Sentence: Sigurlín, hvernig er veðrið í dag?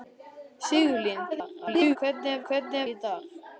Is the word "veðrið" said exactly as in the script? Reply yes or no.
no